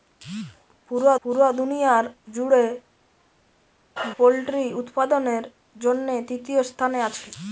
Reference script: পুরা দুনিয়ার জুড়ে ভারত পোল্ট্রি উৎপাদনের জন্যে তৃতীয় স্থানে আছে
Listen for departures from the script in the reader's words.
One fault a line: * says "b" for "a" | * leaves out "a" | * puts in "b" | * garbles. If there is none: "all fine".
* puts in "পুরা"
* leaves out "ভারত"